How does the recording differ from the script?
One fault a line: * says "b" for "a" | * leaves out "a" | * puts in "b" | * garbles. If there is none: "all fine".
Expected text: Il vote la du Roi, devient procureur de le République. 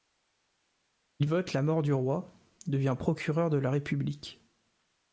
* puts in "mort"
* says "la" for "le"